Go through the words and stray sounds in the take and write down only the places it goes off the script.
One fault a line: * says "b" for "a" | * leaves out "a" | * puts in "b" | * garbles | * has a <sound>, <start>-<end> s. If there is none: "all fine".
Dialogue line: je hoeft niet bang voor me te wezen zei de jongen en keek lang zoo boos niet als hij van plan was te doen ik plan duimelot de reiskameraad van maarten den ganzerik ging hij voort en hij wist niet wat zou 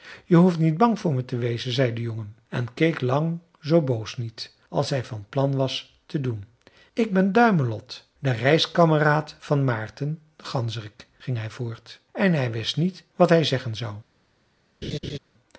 * says "ben" for "plan"
* puts in "hij zeggen"
* has a laugh, 14.8-15.2 s